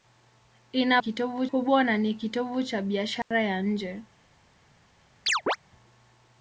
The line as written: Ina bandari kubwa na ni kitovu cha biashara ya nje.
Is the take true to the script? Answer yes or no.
no